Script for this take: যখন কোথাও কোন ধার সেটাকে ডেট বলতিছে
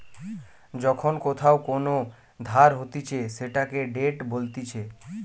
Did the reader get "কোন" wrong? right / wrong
right